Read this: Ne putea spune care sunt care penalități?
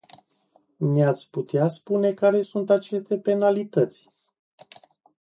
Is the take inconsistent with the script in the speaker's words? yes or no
yes